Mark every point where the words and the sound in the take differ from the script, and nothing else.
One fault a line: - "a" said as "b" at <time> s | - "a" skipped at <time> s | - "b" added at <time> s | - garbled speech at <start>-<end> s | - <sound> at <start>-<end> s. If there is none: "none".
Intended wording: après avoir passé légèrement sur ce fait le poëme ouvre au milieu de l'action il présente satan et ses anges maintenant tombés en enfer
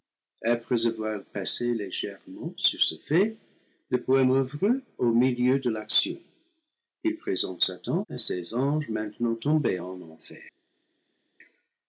none